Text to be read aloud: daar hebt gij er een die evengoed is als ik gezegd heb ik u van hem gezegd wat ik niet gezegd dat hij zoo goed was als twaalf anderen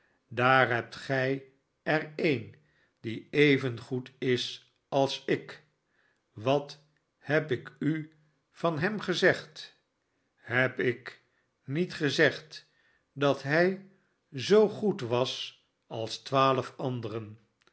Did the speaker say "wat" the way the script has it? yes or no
no